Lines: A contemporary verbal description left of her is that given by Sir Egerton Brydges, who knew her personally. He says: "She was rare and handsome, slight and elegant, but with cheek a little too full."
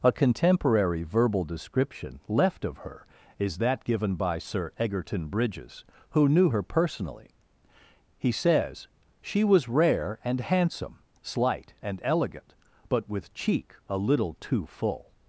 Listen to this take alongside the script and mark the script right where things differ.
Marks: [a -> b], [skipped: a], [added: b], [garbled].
A contemporary verbal description left of her is that given by Sir Egerton Brydges, who knew her personally. He says: "She was rare and handsome, slight and elegant, but with cheek a little too full."